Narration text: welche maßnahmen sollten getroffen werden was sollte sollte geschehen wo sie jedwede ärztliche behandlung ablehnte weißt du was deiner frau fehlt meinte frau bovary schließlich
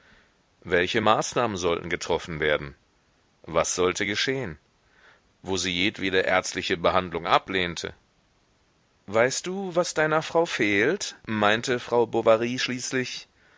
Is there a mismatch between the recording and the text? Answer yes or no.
yes